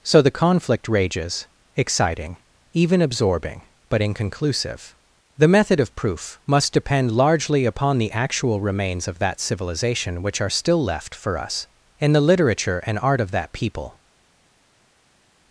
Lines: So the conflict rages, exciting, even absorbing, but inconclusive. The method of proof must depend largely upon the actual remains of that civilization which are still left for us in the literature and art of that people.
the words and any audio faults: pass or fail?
pass